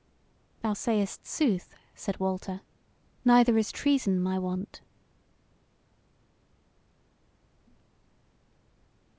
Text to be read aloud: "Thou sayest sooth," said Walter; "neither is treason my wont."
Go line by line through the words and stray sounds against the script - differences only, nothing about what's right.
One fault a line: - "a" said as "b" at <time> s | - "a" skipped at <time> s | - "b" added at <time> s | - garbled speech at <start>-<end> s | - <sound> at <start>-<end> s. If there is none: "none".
none